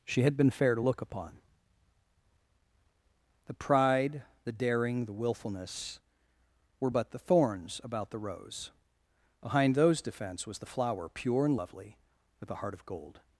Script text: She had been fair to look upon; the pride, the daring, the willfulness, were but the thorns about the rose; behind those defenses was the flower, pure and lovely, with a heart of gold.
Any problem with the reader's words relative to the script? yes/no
yes